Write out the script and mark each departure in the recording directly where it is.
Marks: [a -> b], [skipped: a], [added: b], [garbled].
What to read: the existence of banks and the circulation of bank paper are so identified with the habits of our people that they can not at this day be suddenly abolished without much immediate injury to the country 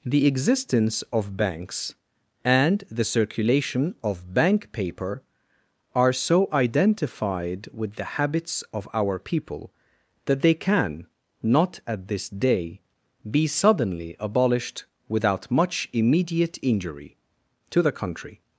the existence of banks and the circulation of bank paper are so identified with the habits of our people that they can not at this day be suddenly abolished without much immediate injury to the country